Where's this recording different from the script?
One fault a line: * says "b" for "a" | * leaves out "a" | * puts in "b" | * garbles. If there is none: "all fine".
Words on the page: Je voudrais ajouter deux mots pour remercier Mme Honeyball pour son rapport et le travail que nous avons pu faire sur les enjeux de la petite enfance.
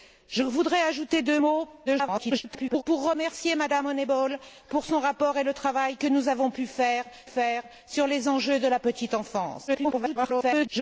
* garbles
* puts in "faire"
* garbles